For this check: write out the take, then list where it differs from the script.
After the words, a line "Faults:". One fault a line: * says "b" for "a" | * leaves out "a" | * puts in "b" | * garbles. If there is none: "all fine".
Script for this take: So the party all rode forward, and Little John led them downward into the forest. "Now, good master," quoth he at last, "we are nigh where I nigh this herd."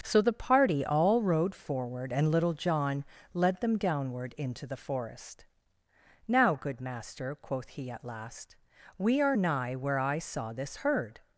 So the party all rode forward, and Little John led them downward into the forest. "Now, good master," quoth he at last, "we are nigh where I saw this herd."
Faults:
* says "saw" for "nigh"